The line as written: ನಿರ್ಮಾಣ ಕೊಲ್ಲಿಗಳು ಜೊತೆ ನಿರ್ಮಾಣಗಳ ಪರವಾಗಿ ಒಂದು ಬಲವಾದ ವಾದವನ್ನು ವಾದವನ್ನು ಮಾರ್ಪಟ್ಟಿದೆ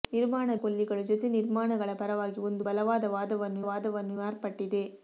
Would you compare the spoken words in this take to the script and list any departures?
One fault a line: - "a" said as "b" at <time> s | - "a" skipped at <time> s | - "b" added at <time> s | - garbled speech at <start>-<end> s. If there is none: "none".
none